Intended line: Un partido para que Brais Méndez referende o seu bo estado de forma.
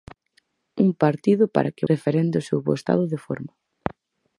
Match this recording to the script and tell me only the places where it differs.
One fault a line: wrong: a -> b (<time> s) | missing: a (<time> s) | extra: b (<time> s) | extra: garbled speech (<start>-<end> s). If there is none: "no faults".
missing: Brais Méndez (1.9 s)